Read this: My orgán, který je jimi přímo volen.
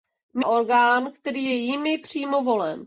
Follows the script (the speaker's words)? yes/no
yes